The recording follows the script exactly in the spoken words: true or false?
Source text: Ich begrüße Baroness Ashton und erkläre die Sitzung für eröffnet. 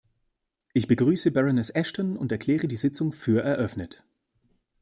true